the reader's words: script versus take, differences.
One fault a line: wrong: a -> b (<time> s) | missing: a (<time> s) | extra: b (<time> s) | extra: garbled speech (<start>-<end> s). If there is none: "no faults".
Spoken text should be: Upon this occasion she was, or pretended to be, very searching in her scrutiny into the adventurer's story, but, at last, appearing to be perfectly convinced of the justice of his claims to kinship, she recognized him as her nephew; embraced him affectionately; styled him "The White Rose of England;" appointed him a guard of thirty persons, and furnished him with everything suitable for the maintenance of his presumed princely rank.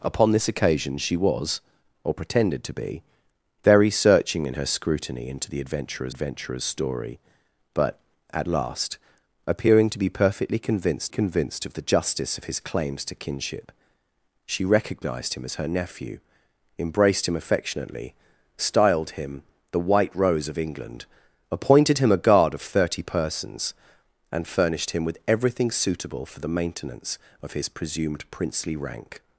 extra: adventurer's (6.1 s)
extra: convinced (11.1 s)